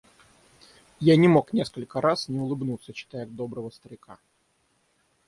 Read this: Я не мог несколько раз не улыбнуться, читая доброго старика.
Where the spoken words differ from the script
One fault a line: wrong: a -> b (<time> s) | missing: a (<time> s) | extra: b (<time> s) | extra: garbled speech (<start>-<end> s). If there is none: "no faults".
no faults